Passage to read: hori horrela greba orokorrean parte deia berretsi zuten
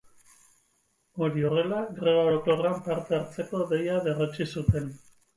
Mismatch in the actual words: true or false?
true